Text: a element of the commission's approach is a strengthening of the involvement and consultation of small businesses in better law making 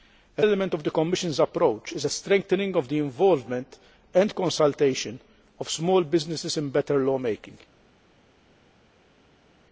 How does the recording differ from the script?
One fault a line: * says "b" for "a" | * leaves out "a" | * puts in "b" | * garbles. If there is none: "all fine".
all fine